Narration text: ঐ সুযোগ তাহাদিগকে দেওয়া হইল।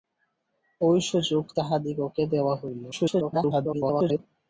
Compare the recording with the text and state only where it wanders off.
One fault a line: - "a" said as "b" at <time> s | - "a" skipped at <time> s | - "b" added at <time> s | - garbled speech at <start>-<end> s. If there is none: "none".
- garbled speech at 2.9-4.2 s